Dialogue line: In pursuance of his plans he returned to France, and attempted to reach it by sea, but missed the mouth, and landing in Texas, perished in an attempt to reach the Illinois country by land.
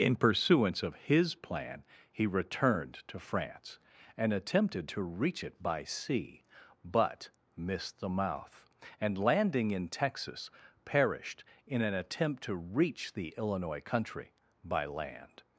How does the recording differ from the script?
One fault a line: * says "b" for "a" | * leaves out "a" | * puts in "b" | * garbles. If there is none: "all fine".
* says "plan" for "plans"